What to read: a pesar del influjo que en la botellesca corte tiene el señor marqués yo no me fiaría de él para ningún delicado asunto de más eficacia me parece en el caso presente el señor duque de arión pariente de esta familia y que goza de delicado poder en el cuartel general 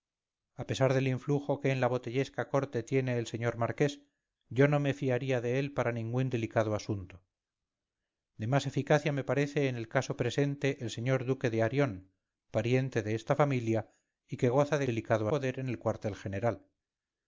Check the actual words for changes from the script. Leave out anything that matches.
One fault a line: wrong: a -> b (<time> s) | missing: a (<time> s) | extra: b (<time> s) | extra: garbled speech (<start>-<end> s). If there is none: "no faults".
no faults